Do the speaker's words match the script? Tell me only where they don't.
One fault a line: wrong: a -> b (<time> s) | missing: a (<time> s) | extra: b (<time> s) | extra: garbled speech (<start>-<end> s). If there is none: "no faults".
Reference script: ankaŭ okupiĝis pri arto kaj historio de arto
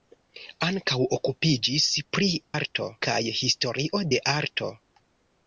no faults